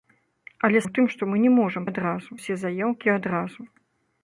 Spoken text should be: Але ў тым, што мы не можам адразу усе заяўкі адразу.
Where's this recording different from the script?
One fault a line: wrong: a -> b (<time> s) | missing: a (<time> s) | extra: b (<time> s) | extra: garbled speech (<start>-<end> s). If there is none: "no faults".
no faults